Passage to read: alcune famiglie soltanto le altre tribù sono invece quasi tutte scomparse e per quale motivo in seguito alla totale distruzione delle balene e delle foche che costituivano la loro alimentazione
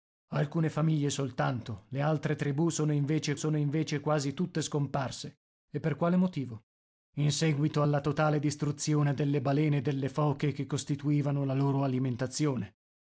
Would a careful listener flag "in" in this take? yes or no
no